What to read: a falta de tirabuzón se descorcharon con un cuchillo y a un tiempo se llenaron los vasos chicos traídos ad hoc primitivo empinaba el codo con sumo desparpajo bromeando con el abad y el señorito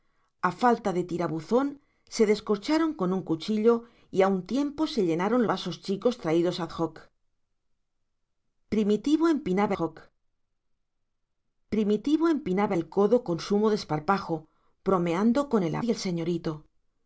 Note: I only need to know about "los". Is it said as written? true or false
false